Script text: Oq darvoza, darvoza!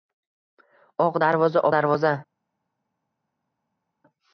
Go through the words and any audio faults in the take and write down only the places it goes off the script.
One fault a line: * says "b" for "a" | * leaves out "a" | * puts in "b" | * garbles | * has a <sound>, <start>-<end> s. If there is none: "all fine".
all fine